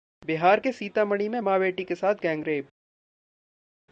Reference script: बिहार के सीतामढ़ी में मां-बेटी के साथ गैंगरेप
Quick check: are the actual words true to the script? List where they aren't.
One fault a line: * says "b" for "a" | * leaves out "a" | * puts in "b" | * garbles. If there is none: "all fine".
all fine